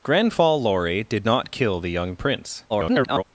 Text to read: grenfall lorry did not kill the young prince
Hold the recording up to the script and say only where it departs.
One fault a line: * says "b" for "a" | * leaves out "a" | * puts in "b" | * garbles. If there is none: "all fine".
* garbles